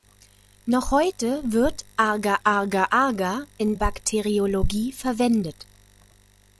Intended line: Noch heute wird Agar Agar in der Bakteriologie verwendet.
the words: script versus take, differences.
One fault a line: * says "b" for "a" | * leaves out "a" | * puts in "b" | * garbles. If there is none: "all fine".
* puts in "Agar"
* leaves out "der"